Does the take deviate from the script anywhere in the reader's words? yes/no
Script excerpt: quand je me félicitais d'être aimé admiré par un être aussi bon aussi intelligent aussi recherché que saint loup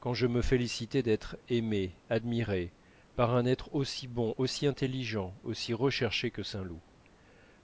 no